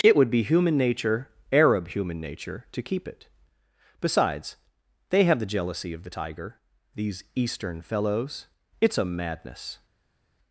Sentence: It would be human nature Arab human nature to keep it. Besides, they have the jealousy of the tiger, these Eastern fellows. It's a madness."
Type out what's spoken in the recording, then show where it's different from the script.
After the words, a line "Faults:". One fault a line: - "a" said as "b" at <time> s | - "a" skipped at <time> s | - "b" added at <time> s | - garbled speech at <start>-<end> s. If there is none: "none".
It would be human nature Arab human nature to keep it. Besides, they have the jealousy of the tiger, these Eastern fellows. It's a madness."
Faults:
none